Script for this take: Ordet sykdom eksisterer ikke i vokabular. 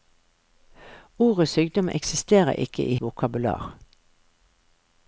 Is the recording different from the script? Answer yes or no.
no